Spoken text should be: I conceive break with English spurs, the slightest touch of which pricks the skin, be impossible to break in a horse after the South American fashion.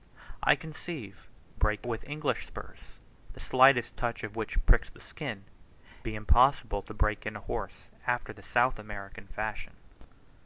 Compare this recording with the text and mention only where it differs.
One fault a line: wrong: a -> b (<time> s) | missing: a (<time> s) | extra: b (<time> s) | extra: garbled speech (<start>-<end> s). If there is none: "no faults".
no faults